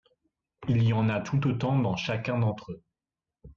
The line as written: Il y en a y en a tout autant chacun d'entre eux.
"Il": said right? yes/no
yes